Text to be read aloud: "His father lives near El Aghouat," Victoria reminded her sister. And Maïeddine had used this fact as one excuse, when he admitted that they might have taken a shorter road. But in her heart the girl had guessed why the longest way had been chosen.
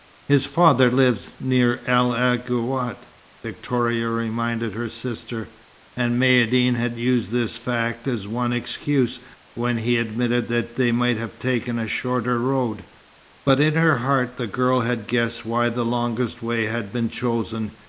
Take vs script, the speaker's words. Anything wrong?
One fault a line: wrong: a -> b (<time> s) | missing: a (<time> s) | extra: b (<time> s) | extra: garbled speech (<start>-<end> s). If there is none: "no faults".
no faults